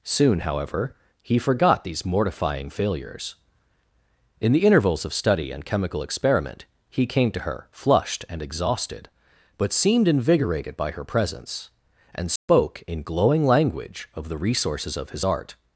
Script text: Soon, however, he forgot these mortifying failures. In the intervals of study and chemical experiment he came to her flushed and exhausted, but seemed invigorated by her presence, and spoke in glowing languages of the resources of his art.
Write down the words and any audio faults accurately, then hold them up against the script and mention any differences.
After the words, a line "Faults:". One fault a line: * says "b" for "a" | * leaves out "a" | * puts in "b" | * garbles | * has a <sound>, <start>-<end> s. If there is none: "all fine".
Soon, however, he forgot these mortifying failures. In the intervals of study and chemical experiment he came to her flushed and exhausted, but seemed invigorated by her presence, and spoke in glowing language of the resources of his art.
Faults:
* has a dropout, 12.4-12.5 s
* says "language" for "languages"